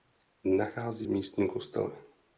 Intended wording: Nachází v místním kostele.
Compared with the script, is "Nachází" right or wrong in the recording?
right